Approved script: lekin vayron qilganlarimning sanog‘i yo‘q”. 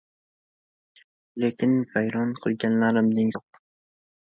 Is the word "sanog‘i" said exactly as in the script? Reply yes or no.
no